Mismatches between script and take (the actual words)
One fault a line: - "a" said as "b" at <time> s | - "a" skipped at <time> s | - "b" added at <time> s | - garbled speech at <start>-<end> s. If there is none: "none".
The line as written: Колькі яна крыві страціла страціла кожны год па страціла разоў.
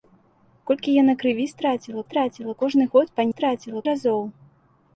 none